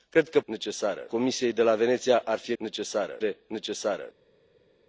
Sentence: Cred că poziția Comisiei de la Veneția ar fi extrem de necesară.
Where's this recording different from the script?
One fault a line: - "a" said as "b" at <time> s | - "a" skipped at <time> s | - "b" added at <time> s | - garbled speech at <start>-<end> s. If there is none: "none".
- "poziția" said as "necesară" at 0.4 s
- "extrem" said as "necesară" at 2.6 s